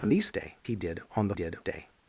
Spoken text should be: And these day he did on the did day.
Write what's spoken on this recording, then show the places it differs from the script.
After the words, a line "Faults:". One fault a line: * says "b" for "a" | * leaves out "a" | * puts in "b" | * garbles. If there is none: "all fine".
And these day he did on the did day.
Faults:
all fine